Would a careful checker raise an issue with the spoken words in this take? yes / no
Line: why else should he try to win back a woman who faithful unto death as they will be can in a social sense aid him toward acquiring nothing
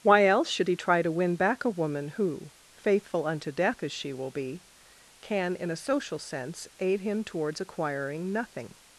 yes